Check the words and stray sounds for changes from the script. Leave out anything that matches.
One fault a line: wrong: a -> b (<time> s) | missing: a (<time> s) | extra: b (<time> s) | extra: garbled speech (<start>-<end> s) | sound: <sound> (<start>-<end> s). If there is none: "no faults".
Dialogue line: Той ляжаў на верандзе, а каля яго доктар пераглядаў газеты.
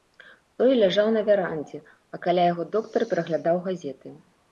no faults